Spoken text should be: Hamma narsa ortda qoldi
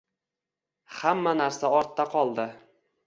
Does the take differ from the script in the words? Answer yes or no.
no